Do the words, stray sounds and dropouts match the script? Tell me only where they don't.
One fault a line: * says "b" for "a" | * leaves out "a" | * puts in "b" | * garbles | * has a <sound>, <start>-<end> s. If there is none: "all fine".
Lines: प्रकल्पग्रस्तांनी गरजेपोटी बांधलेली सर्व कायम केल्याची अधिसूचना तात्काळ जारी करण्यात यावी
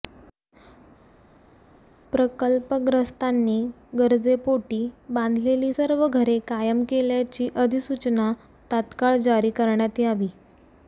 * puts in "घरे"